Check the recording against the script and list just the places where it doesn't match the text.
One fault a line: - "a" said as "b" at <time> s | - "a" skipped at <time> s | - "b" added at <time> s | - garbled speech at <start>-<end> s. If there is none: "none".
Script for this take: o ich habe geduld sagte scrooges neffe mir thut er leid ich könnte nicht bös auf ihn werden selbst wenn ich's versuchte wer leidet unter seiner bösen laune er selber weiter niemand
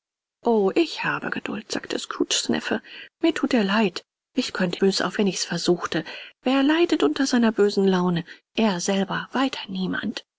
- "nicht" skipped at 4.8 s
- "ihn werden selbst" skipped at 5.2 s